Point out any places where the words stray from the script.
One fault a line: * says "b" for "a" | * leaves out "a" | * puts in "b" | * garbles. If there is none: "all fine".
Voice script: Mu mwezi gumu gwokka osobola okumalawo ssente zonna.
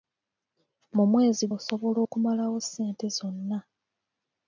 * leaves out "gumu gwokka"